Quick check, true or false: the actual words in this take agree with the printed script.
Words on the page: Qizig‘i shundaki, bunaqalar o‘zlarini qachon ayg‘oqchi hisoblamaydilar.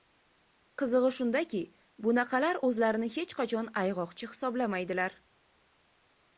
false